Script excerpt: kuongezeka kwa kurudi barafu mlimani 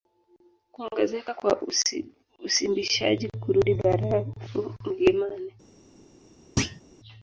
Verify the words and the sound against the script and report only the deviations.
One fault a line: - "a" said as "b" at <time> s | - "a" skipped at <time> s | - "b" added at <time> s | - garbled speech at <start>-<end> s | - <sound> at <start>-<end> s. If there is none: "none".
- "usimbishaji" added at 2.4 s
- thud at 6.6-6.8 s